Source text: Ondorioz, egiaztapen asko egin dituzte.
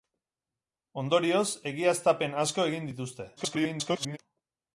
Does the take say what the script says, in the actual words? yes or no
no